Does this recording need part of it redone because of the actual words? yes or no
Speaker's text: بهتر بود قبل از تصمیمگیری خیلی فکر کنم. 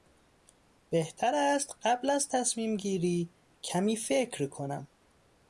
yes